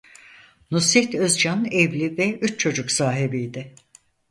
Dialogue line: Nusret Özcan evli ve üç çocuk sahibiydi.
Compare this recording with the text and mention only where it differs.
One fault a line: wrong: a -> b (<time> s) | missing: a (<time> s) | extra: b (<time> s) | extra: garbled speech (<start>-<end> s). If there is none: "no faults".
no faults